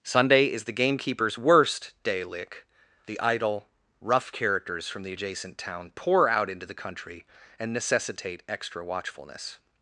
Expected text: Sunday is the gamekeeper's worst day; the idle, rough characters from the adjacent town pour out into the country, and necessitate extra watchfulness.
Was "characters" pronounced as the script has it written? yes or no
yes